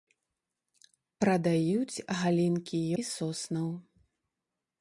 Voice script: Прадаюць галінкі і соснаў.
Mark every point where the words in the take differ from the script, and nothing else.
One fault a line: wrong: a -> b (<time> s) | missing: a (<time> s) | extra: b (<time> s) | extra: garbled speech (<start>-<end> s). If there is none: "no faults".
no faults